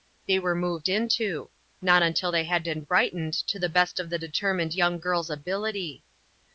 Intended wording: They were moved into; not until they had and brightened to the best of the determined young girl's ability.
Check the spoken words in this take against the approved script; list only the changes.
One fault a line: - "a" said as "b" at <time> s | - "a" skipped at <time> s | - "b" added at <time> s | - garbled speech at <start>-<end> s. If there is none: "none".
none